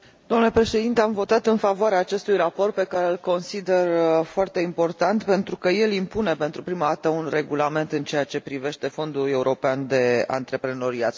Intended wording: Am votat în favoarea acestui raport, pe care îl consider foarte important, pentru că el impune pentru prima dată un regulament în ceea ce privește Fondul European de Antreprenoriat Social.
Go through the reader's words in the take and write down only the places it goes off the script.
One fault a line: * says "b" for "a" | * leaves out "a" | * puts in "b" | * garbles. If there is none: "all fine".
all fine